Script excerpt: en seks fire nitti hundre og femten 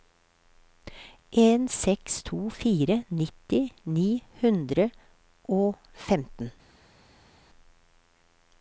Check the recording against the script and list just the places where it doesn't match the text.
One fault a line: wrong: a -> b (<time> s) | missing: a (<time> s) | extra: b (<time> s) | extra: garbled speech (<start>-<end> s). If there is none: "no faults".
extra: to (2.3 s)
extra: ni (3.9 s)